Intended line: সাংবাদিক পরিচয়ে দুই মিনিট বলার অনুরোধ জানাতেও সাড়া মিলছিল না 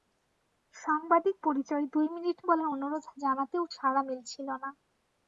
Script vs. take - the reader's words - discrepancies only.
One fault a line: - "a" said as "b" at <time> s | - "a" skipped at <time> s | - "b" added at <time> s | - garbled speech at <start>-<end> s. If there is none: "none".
none